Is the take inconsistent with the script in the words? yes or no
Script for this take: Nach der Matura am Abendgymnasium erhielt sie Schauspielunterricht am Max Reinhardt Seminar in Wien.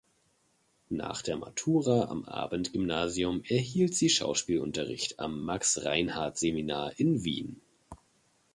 no